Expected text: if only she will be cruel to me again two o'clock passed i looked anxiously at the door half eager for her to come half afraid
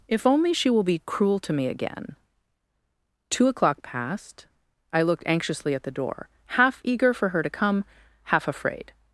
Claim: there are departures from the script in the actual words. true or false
false